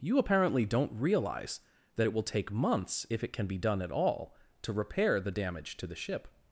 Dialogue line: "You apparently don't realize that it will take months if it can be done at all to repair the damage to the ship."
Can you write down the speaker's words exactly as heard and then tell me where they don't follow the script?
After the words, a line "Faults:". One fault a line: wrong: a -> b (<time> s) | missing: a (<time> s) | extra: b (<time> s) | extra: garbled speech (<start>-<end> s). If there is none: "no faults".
"You apparently don't realize that it will take months if it can be done at all to repair the damage to the ship."
Faults:
no faults